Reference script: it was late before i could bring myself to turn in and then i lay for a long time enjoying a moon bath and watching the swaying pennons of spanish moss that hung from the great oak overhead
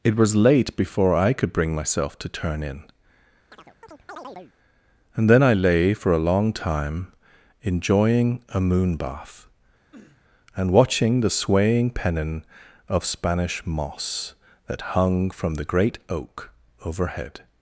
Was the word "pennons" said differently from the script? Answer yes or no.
yes